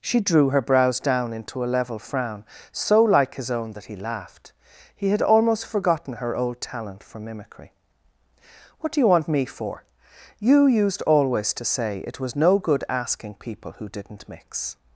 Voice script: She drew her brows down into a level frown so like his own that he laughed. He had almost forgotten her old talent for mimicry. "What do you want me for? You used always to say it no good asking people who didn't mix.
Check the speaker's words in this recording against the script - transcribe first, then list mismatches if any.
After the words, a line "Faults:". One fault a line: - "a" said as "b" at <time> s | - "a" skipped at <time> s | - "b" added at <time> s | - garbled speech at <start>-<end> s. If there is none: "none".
She drew her brows down into a level frown so like his own that he laughed. He had almost forgotten her old talent for mimicry. "What do you want me for? You used always to say it was no good asking people who didn't mix.
Faults:
- "was" added at 12.2 s